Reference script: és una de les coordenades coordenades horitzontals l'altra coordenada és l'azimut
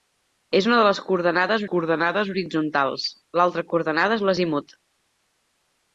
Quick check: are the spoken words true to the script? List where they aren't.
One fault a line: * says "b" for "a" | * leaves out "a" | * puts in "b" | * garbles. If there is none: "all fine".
all fine